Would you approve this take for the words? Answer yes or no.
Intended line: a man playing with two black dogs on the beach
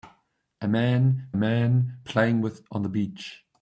no